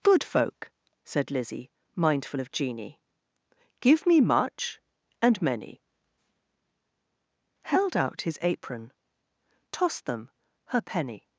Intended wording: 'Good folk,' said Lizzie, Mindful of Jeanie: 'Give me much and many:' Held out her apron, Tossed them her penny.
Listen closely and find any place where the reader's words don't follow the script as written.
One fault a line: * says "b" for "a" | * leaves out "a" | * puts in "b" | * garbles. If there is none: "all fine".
* says "his" for "her"